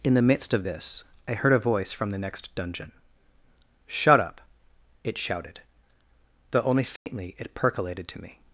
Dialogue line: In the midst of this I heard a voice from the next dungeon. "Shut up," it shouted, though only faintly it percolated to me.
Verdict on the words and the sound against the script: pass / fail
fail